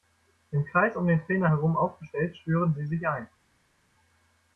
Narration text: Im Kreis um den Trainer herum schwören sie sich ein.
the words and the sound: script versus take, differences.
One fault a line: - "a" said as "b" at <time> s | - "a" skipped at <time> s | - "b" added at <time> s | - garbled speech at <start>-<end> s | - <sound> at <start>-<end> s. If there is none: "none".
- "aufgestellt" added at 1.8 s